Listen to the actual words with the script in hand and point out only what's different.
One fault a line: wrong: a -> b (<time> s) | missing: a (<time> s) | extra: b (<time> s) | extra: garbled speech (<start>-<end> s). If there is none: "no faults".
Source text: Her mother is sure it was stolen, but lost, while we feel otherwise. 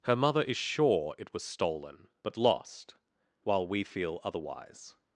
no faults